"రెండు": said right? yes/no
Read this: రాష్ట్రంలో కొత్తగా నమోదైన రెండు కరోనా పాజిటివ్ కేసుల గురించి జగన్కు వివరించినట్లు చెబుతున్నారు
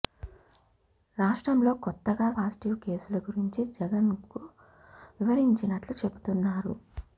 no